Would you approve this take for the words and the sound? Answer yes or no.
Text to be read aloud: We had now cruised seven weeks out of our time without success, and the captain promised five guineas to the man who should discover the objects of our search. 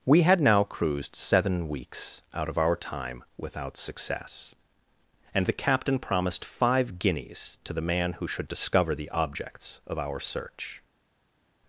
yes